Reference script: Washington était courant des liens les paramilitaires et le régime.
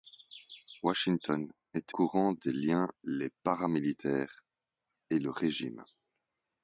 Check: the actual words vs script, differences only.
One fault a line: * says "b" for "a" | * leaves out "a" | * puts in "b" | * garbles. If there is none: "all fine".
all fine